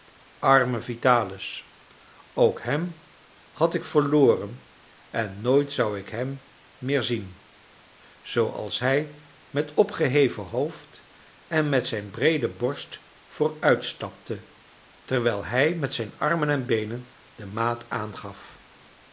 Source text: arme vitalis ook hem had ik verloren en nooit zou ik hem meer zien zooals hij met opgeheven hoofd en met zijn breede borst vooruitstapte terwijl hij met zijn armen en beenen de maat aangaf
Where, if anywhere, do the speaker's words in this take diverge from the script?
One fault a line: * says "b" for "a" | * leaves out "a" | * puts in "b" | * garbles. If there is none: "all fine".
all fine